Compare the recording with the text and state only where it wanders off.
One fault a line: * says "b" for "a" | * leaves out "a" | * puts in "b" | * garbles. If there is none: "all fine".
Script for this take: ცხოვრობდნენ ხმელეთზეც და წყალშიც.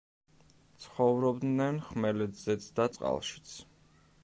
all fine